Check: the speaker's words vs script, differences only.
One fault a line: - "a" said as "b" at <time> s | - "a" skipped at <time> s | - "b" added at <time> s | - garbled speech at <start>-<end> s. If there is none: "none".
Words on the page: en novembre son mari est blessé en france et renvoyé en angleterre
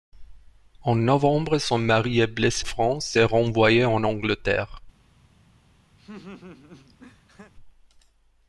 - "en" skipped at 2.6 s